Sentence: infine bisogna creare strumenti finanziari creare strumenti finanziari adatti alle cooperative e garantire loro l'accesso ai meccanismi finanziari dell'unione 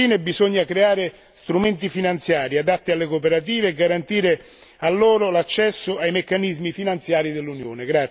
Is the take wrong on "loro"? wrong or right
right